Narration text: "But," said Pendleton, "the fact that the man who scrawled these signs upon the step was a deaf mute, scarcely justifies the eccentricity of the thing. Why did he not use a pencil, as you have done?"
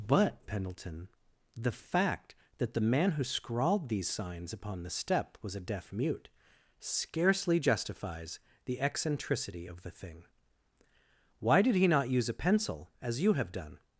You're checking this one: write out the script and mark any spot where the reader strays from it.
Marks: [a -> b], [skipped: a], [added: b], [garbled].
"But," [skipped: said] Pendleton, "the fact that the man who scrawled these signs upon the step was a deaf mute, scarcely justifies the eccentricity of the thing. Why did he not use a pencil, as you have done?"